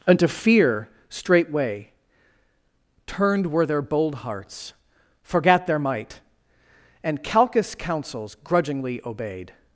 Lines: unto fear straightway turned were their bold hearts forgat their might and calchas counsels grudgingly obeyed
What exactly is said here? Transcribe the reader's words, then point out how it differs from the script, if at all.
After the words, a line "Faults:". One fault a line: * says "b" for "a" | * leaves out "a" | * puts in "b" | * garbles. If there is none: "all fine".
unto fear straightway turned were their bold hearts forgat their might and calchas counsels grudgingly obeyed
Faults:
all fine